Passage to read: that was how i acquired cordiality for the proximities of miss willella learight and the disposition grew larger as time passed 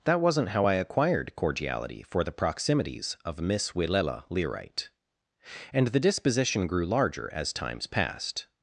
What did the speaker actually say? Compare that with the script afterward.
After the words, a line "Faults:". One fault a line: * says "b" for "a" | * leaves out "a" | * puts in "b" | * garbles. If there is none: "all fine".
that wasn't how i acquired cordiality for the proximities of miss willella learight and the disposition grew larger as times passed
Faults:
* says "wasn't" for "was"
* says "times" for "time"